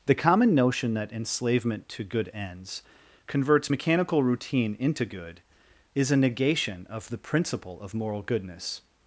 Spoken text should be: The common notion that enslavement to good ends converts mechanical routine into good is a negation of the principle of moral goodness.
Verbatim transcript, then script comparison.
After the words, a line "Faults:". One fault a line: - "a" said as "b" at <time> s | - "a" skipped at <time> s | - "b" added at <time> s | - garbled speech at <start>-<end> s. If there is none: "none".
The common notion that enslavement to good ends converts mechanical routine into good is a negation of the principle of moral goodness.
Faults:
none